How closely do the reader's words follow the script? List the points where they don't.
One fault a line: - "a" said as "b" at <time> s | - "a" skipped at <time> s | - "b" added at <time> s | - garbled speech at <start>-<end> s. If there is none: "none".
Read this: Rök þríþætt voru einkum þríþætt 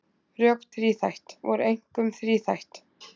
none